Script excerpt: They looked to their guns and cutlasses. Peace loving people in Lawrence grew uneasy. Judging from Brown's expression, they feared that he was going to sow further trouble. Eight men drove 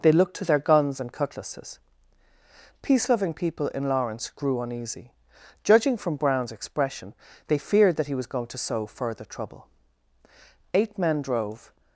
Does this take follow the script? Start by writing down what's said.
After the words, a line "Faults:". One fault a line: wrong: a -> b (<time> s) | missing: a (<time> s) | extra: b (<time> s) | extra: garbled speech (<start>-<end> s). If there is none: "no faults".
They looked to their guns and cutlasses. Peace loving people in Lawrence grew uneasy. Judging from Brown's expression, they feared that he was going to sow further trouble. Eight men drove
Faults:
no faults